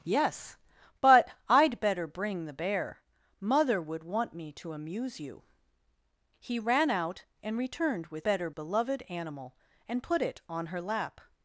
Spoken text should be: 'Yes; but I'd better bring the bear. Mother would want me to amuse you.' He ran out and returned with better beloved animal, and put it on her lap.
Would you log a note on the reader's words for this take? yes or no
no